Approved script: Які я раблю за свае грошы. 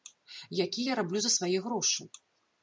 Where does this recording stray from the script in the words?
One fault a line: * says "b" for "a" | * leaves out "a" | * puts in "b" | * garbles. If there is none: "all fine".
all fine